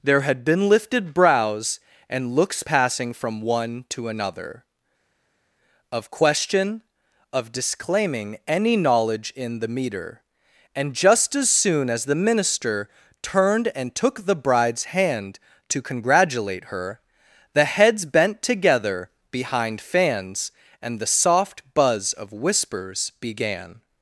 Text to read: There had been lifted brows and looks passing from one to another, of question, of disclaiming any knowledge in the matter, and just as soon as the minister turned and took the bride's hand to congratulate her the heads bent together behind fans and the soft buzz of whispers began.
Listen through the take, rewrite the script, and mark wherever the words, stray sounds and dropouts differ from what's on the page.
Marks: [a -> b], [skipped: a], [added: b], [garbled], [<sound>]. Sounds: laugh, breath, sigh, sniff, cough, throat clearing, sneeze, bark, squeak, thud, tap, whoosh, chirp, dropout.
There had been lifted brows and looks passing from one to another, of question, of disclaiming any knowledge in the [matter, -> meter] and just as soon as the minister turned and took the bride's hand to congratulate her the heads bent together behind fans and the soft buzz of whispers began.